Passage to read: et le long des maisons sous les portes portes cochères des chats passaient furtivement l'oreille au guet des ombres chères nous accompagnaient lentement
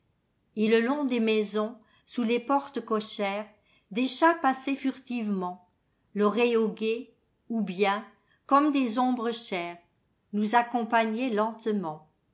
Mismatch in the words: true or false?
true